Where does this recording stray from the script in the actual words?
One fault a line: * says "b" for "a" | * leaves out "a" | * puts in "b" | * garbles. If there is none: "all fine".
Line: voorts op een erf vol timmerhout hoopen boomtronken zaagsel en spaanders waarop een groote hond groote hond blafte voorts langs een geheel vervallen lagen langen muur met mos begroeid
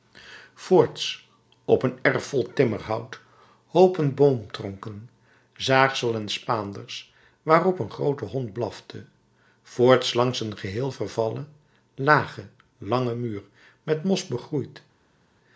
* leaves out "groote hond"